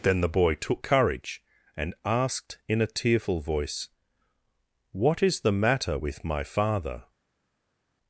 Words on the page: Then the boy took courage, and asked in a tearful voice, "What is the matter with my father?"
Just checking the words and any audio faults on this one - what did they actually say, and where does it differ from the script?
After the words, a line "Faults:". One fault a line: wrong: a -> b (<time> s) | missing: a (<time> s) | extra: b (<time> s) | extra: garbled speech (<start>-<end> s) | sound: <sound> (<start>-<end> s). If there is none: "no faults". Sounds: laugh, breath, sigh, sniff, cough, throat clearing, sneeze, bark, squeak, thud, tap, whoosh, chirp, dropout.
Then the boy took courage, and asked in a tearful voice, "What is the matter with my father?"
Faults:
no faults